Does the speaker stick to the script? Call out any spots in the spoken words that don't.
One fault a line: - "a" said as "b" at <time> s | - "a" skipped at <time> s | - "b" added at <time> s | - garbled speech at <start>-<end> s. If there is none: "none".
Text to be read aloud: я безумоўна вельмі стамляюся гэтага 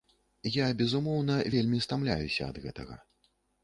- "ад" added at 2.5 s